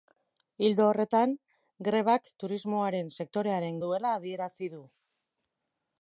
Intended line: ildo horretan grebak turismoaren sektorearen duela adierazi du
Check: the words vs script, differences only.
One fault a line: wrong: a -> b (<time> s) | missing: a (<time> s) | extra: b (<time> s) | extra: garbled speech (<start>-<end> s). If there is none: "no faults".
no faults